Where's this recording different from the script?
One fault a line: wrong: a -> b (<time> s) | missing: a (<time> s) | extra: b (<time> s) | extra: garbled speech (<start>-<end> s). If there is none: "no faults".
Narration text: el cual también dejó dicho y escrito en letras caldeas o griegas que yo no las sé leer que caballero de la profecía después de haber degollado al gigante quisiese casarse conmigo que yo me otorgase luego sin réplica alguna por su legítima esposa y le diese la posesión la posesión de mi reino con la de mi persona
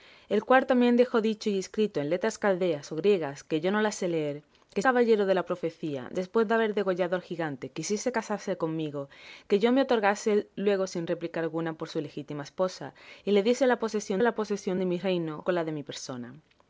no faults